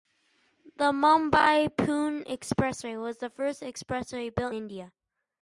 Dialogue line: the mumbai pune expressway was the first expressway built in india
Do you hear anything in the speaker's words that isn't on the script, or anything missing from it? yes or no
yes